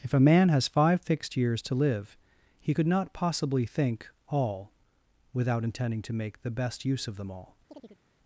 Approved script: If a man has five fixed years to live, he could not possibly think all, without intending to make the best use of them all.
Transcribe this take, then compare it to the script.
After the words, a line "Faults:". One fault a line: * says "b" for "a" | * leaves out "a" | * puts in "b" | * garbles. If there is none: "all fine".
If a man has five fixed years to live, he could not possibly think all, without intending to make the best use of them all.
Faults:
all fine